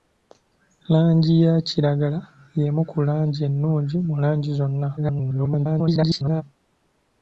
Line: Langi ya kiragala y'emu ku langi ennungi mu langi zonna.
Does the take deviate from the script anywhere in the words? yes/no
yes